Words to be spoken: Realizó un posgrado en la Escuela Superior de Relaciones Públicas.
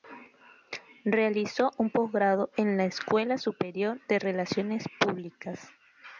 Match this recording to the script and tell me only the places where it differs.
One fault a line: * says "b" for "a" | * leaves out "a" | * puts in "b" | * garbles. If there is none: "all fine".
all fine